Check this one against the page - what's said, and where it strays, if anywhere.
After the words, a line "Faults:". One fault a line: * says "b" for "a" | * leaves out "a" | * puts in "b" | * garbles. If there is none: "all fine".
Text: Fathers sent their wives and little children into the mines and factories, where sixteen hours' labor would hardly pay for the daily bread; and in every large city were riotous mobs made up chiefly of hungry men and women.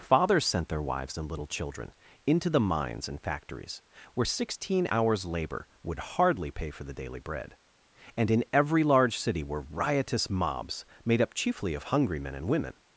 Fathers sent their wives and little children into the mines and factories, where sixteen hours' labor would hardly pay for the daily bread; and in every large city were riotous mobs made up chiefly of hungry men and women.
Faults:
all fine